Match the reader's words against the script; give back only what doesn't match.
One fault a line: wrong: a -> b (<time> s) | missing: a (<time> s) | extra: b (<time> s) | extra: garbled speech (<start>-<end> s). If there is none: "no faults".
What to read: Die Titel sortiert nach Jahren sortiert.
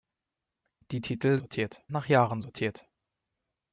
no faults